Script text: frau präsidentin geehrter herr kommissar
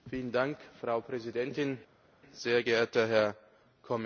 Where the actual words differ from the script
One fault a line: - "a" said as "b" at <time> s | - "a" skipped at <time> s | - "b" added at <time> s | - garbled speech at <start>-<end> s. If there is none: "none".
- "sehr" added at 2.3 s